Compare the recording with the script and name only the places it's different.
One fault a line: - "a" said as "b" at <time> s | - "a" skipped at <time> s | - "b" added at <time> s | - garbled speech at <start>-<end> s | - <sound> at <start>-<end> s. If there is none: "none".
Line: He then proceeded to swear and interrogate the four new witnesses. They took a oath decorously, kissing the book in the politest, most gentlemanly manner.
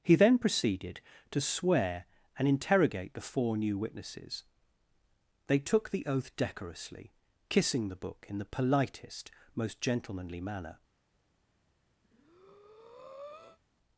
- "a" said as "the" at 5.9 s
- breath at 12.0-13.6 s